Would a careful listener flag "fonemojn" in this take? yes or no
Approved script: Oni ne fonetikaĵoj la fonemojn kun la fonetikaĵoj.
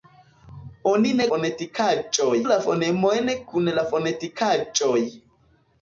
no